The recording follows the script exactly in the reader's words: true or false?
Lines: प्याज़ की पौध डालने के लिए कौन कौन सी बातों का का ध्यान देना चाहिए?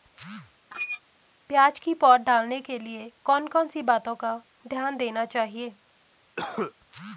false